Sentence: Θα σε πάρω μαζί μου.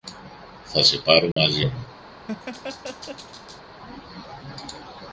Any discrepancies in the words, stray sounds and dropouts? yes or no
yes